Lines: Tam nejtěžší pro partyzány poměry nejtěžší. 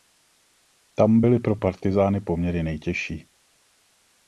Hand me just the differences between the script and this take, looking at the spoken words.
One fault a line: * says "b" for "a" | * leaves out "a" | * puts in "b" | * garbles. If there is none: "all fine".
* says "byly" for "nejtěžší"